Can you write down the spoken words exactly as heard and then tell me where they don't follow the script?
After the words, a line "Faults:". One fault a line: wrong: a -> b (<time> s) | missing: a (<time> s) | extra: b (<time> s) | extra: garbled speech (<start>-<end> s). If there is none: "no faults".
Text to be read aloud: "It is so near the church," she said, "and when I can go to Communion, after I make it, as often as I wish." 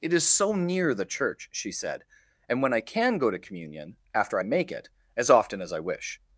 "It is so near the church," she said, "and when I can go to Communion, after I make it, as often as I wish."
Faults:
no faults